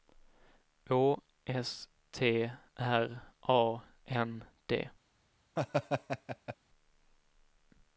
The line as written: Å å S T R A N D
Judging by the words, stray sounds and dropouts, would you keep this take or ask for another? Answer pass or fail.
fail